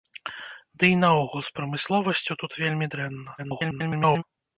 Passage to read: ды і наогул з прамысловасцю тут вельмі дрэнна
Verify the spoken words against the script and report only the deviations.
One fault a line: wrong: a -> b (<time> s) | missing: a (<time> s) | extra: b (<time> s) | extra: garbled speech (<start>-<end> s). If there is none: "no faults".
extra: garbled speech (3.4-4.2 s)